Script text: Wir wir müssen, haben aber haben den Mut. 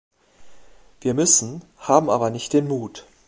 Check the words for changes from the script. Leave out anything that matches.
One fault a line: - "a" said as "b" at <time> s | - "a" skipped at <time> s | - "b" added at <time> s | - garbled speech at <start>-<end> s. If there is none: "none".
- "wir" skipped at 1.1 s
- "haben" said as "nicht" at 2.3 s